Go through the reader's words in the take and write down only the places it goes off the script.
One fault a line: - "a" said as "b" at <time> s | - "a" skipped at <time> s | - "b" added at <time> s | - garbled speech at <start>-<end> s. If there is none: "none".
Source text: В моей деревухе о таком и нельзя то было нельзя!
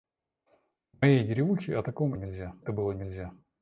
none